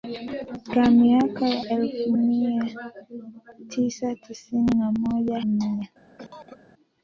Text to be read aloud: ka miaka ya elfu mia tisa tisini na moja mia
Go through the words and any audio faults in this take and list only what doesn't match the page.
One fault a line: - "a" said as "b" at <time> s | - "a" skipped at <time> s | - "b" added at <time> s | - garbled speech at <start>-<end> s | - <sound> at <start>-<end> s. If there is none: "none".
- cough at 6.2-6.6 s